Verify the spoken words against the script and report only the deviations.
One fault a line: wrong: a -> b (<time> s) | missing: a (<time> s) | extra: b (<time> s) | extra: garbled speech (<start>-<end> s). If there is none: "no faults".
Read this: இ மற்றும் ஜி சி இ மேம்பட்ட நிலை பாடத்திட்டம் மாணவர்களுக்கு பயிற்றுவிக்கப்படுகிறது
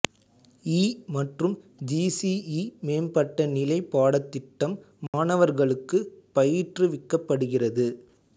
no faults